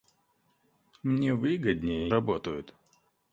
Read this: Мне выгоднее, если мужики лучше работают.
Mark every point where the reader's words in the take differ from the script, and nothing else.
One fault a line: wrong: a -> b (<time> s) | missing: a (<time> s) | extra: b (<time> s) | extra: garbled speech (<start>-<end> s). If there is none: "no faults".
missing: если мужики лучше (2.1 s)